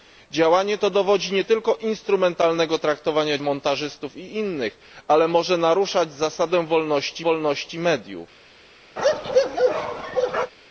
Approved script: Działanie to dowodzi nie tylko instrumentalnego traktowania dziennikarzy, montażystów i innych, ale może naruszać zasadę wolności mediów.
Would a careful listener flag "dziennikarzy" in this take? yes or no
yes